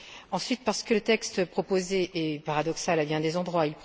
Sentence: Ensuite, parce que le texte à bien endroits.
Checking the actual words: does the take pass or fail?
fail